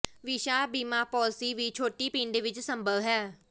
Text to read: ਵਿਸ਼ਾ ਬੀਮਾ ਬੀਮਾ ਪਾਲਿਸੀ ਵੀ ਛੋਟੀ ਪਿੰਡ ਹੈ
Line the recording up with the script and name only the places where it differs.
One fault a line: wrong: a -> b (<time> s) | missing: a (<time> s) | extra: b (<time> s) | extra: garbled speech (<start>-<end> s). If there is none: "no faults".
missing: ਬੀਮਾ (1.0 s)
extra: ਵਿੱਚ ਸੰਭਵ (2.4 s)